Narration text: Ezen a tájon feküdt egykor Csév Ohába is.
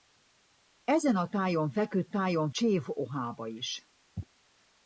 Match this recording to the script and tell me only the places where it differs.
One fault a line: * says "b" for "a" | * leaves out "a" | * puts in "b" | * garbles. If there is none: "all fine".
* says "tájon" for "egykor"